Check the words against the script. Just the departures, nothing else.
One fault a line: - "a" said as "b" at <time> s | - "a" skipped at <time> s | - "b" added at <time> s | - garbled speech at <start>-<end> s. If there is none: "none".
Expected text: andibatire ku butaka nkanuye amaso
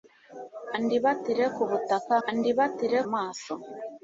- "nkanuye" said as "andibatire" at 2.3 s